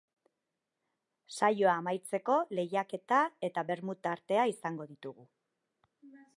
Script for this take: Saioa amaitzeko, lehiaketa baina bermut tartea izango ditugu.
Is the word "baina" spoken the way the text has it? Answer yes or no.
no